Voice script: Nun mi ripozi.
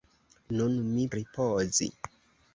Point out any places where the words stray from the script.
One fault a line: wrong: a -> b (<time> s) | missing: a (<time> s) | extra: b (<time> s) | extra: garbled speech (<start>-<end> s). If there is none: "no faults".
no faults